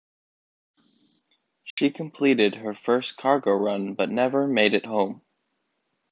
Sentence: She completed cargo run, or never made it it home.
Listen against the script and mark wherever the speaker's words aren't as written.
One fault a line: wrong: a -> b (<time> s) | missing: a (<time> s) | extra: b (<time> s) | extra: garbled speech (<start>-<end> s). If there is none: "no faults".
extra: her first (2.5 s)
wrong: or -> but (3.9 s)
missing: it (4.9 s)